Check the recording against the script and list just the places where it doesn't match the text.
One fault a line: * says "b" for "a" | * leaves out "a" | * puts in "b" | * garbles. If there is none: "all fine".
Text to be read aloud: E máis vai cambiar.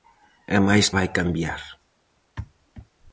all fine